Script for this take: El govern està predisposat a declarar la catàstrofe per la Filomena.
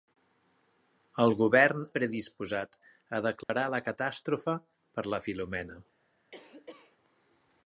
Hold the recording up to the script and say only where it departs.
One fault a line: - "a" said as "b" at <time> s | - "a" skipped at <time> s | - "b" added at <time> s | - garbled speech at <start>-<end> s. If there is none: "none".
- "està" skipped at 1.8 s